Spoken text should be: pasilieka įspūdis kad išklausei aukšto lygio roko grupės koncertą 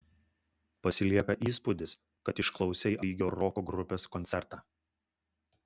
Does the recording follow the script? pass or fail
fail